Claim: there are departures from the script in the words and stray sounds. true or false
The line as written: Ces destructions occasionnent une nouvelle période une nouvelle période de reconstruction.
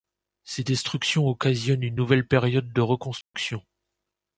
true